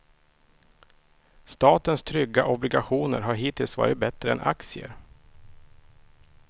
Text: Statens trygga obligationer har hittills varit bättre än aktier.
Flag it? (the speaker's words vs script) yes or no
no